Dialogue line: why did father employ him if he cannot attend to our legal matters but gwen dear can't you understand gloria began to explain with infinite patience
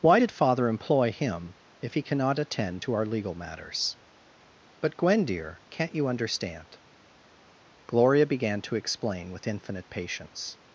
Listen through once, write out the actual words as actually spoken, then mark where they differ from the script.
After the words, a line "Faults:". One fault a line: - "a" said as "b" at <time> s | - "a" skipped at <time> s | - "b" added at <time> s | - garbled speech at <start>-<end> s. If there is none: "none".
why did father employ him if he cannot attend to our legal matters but gwen dear can't you understand gloria began to explain with infinite patience
Faults:
none